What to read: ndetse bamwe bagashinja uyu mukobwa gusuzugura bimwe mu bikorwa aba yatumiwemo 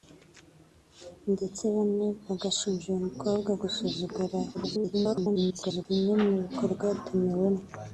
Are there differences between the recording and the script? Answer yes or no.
yes